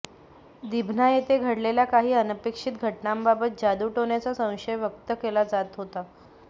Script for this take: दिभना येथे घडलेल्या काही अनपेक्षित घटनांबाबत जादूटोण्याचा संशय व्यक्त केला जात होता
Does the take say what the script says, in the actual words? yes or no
yes